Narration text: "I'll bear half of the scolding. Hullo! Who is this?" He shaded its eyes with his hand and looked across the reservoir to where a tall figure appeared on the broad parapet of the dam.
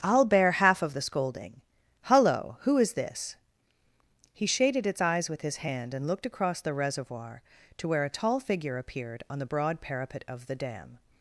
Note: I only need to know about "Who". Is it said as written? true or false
true